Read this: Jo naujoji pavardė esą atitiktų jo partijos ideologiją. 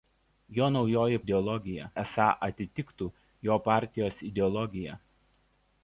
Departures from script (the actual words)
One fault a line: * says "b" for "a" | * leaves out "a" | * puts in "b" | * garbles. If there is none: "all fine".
* says "ideologiją" for "pavardė"